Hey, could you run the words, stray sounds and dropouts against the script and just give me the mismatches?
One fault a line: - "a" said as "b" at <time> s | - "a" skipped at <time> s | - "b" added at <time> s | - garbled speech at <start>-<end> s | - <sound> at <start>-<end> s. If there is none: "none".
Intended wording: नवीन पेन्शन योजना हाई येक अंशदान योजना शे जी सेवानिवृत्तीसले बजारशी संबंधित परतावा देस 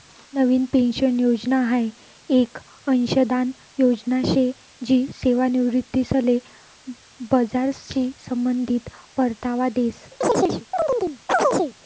- chirp at 10.2-11.8 s